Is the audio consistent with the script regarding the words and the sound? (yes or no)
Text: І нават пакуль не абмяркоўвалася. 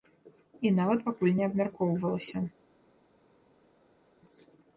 yes